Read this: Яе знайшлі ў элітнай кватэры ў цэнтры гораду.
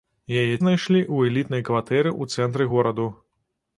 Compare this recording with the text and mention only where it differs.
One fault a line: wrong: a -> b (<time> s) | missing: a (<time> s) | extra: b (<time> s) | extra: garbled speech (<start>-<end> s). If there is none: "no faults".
no faults